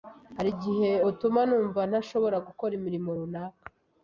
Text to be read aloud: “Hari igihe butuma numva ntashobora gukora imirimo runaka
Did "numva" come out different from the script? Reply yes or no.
no